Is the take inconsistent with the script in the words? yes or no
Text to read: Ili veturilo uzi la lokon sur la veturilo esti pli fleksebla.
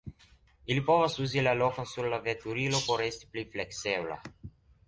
yes